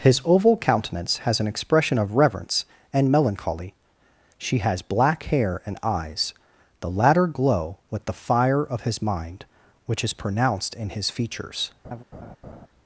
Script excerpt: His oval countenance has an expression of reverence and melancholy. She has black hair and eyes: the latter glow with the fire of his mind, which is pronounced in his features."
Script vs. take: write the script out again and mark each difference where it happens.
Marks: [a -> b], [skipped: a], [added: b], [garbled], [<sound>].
His oval countenance has an expression of reverence and melancholy. She has black hair and eyes: the latter glow with the fire of his mind, which is pronounced in his features." [laugh]